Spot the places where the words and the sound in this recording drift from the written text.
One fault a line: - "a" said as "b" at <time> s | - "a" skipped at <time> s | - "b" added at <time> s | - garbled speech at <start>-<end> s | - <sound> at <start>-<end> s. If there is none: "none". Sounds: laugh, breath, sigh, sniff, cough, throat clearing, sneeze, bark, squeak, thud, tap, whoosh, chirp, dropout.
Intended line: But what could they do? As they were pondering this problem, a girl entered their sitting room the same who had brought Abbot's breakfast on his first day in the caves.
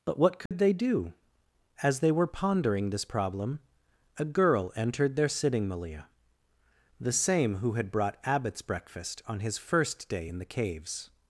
- dropout at 0.5-0.5 s
- "room" said as "malia" at 5.7 s